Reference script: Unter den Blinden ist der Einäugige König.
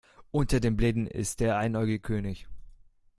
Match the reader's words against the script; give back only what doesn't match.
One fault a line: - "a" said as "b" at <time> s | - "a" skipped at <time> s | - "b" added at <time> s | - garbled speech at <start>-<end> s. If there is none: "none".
none